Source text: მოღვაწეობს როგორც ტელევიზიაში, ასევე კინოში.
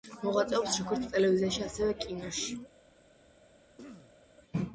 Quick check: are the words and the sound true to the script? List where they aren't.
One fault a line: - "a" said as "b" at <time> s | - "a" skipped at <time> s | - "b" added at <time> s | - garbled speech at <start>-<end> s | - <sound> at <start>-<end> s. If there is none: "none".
- throat clearing at 3.8-4.2 s